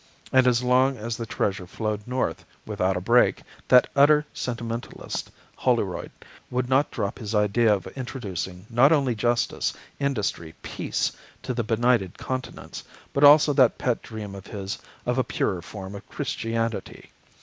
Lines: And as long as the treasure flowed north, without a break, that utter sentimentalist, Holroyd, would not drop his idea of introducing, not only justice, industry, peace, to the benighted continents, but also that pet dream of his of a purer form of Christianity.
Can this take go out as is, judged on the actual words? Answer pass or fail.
pass